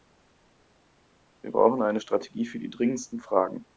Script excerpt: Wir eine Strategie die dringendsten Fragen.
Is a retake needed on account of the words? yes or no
yes